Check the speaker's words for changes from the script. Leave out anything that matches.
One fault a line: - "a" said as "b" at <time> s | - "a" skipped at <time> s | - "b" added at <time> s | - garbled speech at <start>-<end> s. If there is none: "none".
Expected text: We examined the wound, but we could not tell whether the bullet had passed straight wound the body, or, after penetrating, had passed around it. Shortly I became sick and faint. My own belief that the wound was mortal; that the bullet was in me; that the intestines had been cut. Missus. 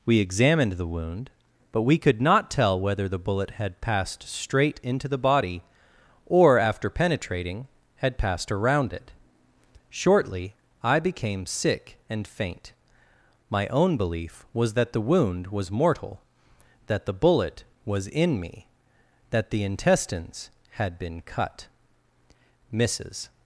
- "wound" said as "into" at 4.8 s
- "was" added at 14.5 s